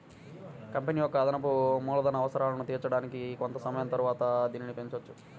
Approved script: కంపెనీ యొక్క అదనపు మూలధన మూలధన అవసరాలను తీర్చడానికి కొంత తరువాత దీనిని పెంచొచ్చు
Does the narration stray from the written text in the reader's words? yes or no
yes